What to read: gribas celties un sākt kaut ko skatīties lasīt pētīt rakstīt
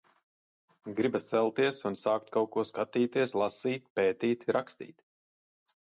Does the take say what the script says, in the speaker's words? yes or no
yes